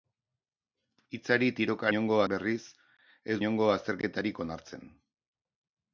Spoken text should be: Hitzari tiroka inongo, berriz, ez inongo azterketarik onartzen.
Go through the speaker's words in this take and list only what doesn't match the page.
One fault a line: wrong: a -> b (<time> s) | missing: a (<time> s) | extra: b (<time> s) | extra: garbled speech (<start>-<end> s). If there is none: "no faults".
no faults